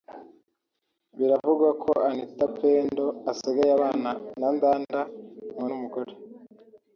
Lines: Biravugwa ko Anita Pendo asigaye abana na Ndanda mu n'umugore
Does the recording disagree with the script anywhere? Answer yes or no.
no